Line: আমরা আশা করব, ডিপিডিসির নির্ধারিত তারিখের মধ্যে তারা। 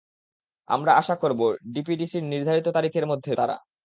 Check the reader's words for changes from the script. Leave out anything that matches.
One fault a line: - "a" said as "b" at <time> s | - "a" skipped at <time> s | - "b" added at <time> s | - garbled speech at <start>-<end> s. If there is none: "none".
none